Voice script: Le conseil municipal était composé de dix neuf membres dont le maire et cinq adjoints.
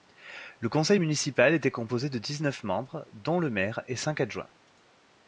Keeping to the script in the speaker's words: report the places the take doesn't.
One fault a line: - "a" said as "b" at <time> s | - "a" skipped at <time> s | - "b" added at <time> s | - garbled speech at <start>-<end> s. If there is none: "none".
none